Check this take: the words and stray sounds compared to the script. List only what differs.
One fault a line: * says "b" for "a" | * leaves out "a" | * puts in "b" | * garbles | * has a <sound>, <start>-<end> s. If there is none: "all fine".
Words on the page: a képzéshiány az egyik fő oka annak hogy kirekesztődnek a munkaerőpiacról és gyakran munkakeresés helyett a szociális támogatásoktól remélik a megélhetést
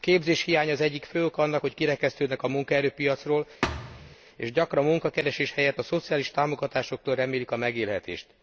* has a thud, 3.6-4.2 s